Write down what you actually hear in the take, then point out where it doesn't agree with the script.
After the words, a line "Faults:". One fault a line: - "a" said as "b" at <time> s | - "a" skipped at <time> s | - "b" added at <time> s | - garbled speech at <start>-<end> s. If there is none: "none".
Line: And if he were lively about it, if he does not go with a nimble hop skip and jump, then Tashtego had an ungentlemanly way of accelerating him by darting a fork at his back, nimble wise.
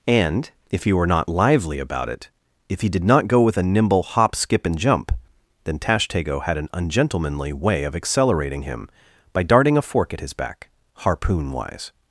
And if he were not lively about it, if he did not go with a nimble hop skip and jump, then Tashtego had an ungentlemanly way of accelerating him by darting a fork at his back, harpoon wise.
Faults:
- "not" added at 1.1 s
- "does" said as "did" at 2.9 s
- "nimble" said as "harpoon" at 10.9 s